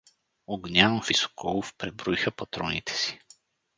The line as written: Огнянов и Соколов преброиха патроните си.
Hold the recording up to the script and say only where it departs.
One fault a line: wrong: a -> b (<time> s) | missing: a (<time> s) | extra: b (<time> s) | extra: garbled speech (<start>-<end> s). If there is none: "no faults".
no faults